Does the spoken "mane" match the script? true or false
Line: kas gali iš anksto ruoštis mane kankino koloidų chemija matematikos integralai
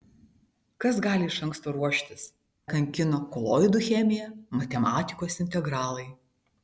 false